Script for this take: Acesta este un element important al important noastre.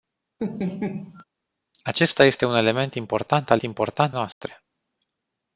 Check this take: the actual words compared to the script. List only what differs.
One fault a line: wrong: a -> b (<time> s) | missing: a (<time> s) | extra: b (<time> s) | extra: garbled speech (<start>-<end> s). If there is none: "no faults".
no faults